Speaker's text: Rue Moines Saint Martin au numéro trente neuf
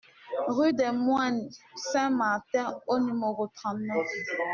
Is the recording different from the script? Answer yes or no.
yes